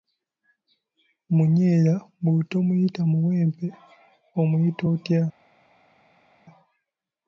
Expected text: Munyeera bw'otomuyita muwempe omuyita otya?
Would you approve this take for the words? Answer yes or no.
yes